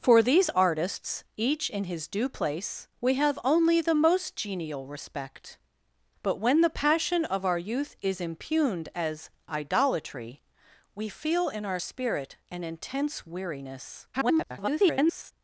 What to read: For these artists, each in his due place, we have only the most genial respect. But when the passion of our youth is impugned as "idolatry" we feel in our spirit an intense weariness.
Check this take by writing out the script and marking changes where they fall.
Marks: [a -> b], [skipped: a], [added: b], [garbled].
For these artists, each in his due place, we have only the most genial respect. But when the passion of our youth is impugned as "idolatry" we feel in our spirit an intense weariness. [garbled]